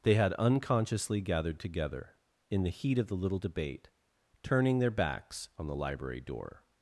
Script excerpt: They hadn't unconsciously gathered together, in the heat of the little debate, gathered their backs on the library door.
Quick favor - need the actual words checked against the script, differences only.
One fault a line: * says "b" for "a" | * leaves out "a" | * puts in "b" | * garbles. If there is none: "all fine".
* says "had" for "hadn't"
* says "turning" for "gathered"